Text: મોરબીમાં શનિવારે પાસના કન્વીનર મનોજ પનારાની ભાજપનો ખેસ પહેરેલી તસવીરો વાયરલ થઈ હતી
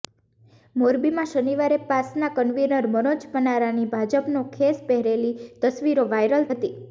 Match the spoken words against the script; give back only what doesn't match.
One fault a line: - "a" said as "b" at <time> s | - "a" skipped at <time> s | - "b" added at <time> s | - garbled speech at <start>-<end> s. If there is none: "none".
- "થઈ" skipped at 6.5 s